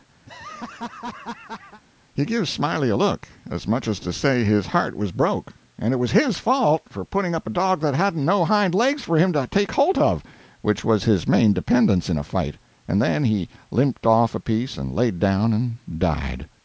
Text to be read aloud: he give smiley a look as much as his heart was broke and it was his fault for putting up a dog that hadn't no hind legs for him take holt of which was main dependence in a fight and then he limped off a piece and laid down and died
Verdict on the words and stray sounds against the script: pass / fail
fail